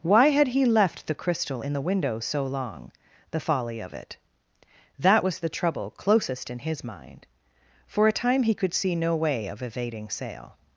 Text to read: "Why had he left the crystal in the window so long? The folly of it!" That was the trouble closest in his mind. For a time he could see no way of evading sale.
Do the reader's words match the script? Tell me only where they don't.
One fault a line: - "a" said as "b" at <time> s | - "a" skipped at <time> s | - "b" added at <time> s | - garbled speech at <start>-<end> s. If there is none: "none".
none